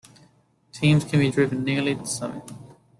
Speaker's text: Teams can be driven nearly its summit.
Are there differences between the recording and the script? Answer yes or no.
no